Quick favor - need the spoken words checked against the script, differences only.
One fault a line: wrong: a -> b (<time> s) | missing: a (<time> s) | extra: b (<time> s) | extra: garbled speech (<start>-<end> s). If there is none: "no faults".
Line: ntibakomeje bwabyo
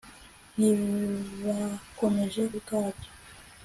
no faults